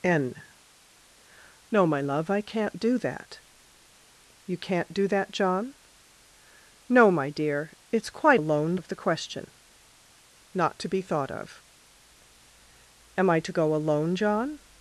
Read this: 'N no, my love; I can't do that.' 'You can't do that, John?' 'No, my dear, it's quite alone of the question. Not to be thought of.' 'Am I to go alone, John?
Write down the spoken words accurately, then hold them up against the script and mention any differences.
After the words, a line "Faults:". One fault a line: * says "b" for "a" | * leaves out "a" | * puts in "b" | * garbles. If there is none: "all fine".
'N no, my love; I can't do that.' 'You can't do that, John?' 'No, my dear, it's quite alone of the question. Not to be thought of.' 'Am I to go alone, John?
Faults:
all fine